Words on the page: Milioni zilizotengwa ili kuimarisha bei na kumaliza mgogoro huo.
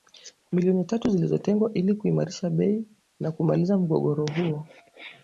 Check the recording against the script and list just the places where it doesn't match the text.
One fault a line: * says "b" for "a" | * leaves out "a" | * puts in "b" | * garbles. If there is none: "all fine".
* puts in "tatu"